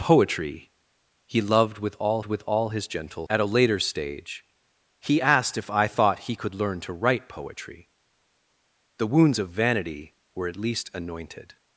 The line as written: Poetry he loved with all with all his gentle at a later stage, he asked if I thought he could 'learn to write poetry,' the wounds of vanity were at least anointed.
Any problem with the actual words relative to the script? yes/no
no